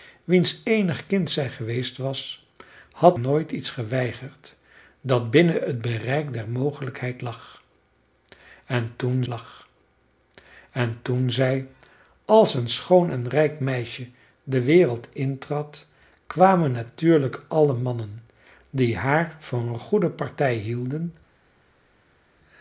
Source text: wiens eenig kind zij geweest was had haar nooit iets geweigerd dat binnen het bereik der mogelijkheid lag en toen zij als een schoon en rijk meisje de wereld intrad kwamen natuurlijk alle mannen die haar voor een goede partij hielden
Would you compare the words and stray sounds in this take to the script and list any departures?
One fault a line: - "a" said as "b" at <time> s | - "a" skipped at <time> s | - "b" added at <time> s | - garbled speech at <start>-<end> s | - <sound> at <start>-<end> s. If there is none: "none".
- "haar" skipped at 3.2 s
- "lag en toen" added at 9.3 s